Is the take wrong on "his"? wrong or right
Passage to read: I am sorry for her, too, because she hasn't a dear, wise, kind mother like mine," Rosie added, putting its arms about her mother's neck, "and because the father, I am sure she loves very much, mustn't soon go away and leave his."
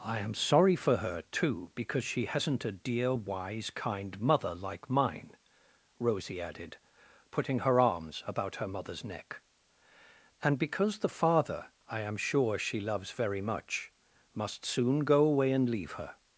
wrong